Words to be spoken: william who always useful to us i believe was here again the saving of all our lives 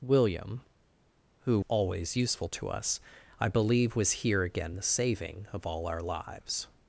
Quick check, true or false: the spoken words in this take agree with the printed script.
true